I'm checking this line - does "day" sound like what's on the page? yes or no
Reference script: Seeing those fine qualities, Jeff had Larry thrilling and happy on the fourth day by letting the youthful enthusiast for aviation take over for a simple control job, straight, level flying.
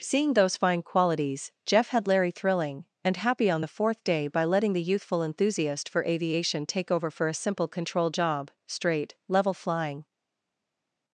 yes